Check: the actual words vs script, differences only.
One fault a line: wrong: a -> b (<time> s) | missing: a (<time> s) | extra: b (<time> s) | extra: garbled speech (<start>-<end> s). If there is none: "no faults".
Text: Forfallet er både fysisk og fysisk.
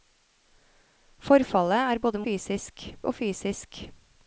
no faults